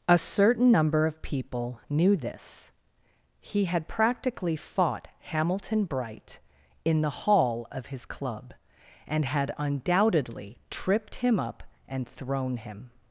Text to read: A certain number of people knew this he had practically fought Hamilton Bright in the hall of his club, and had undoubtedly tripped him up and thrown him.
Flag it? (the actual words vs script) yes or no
no